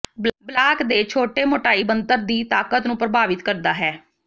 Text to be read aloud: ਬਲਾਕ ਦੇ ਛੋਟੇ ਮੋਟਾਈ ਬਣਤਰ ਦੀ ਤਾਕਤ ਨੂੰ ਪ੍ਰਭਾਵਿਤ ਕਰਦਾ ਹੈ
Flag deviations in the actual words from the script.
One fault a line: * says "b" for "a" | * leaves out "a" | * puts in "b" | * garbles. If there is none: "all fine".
all fine